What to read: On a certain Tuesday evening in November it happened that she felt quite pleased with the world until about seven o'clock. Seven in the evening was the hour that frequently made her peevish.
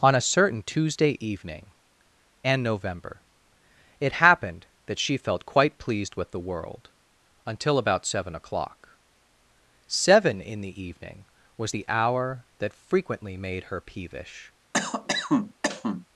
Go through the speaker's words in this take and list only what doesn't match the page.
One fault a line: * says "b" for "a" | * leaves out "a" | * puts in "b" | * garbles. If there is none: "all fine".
* says "and" for "in"